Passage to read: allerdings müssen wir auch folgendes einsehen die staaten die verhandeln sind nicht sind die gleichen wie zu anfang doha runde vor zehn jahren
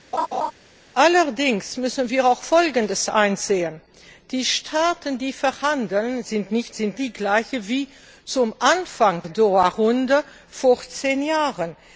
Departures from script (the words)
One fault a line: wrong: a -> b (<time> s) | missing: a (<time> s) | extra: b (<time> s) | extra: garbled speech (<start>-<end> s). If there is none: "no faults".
no faults